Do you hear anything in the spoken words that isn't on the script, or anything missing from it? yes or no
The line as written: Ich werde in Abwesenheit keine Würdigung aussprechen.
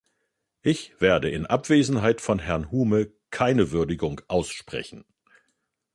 yes